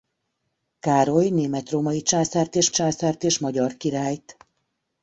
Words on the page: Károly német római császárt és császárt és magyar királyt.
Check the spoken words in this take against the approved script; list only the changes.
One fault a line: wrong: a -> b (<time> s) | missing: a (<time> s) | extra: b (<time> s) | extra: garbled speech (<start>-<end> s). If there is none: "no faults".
no faults